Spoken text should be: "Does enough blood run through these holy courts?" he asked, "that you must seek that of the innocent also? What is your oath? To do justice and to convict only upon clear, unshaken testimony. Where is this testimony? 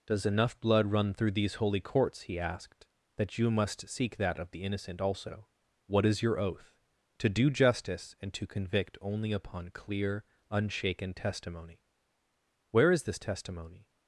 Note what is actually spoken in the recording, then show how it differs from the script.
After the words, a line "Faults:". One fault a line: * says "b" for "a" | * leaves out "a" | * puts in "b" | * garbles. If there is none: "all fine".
"Does enough blood run through these holy courts?" he asked, "that you must seek that of the innocent also? What is your oath? To do justice and to convict only upon clear, unshaken testimony. Where is this testimony?
Faults:
all fine